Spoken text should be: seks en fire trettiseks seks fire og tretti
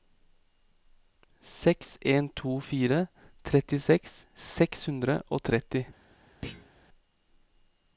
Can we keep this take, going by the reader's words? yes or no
no